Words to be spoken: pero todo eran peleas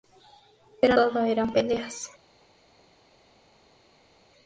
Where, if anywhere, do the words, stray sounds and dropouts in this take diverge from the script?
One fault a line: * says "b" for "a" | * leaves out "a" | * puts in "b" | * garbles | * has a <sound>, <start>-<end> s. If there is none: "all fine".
all fine